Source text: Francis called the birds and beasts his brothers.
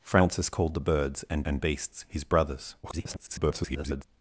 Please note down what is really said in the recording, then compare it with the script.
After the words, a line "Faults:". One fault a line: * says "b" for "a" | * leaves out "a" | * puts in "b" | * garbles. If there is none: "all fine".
Francis called the birds and and beasts his brothers. [garbled]
Faults:
* puts in "and"
* garbles